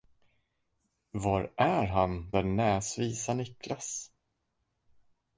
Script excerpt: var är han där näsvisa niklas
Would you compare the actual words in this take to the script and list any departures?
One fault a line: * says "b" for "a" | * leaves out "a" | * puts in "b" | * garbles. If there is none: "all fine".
all fine